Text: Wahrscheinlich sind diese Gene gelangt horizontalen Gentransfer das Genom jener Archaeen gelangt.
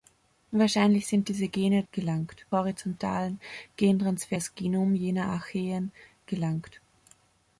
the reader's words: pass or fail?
pass